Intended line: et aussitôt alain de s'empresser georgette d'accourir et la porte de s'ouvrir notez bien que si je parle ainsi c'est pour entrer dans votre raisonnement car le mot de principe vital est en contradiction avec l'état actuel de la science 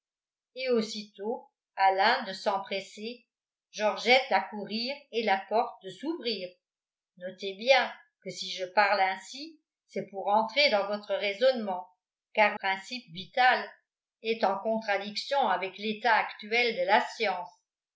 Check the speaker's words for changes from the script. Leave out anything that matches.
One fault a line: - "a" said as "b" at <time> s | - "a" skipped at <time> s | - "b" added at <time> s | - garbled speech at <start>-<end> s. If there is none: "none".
- "le mot de" skipped at 12.6 s